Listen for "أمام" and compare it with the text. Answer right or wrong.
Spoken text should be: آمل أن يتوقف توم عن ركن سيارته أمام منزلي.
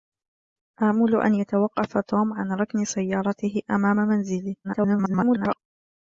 right